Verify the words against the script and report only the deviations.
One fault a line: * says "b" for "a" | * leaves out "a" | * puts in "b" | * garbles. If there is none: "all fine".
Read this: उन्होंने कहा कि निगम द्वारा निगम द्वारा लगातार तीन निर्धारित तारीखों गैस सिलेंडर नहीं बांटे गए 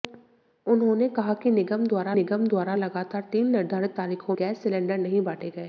all fine